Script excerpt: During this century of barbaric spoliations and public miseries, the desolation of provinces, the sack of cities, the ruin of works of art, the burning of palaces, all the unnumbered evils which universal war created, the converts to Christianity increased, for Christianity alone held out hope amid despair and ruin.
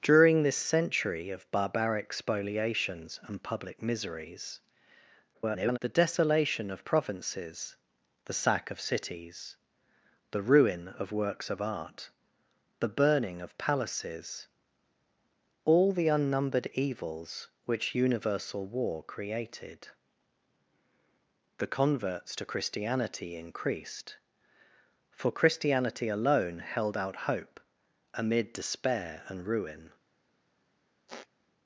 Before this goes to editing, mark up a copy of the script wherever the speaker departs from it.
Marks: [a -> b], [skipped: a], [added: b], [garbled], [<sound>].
During this century of barbaric spoliations and public miseries, [garbled] the desolation of provinces, the sack of cities, the ruin of works of art, the burning of palaces, all the unnumbered evils which universal war created, the converts to Christianity increased, for Christianity alone held out hope amid despair and ruin. [squeak]